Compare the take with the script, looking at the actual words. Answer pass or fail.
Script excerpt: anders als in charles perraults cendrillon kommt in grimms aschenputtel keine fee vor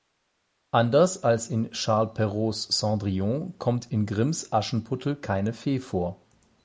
pass